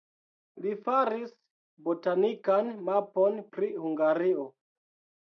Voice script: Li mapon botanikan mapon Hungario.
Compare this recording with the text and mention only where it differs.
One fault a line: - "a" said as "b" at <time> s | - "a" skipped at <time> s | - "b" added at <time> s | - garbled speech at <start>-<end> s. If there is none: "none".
- "mapon" said as "faris" at 0.8 s
- "pri" added at 3.6 s